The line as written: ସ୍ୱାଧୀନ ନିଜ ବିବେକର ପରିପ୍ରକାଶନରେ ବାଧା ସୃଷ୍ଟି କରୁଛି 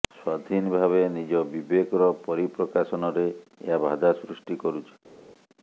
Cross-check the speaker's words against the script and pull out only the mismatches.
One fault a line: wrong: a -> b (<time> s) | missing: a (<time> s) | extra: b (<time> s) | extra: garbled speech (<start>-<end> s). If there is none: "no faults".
extra: ଭାବେ (0.8 s)
extra: ଏହା (3.7 s)